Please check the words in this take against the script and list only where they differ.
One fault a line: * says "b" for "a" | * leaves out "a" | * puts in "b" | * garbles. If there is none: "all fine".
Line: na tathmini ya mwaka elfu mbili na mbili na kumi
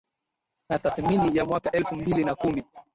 * leaves out "mbili na"